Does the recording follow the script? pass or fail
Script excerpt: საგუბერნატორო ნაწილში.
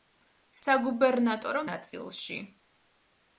pass